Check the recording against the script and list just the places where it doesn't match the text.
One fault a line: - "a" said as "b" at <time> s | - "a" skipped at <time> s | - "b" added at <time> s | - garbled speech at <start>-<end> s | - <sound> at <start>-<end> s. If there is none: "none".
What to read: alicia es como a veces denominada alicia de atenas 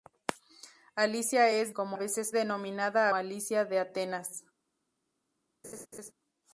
- laugh at 5.6-6.1 s